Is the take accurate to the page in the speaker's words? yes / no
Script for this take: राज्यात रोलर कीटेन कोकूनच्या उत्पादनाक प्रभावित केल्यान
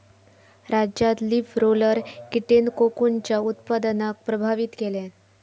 no